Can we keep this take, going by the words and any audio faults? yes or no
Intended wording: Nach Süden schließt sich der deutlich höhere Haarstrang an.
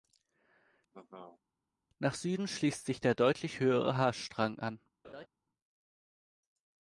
no